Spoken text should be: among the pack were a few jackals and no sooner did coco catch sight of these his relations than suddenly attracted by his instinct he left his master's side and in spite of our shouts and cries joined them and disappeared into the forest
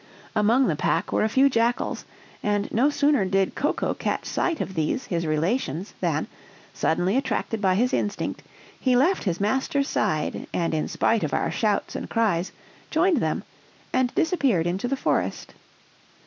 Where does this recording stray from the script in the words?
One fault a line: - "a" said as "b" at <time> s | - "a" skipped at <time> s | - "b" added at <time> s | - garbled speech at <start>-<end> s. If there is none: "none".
none